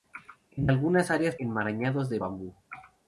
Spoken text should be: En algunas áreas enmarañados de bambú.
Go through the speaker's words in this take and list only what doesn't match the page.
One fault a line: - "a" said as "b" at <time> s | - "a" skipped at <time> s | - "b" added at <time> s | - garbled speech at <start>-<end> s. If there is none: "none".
none